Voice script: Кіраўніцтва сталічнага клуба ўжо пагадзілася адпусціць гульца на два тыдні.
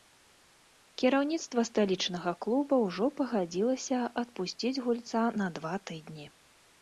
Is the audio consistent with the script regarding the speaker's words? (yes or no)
yes